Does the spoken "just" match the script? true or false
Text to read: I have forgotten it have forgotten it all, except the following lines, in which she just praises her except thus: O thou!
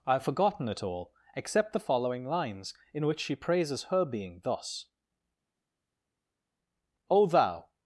false